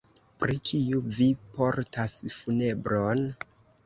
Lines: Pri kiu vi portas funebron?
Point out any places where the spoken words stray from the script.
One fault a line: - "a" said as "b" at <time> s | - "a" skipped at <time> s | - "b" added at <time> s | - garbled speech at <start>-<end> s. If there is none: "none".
none